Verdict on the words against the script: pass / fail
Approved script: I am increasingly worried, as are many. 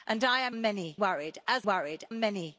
fail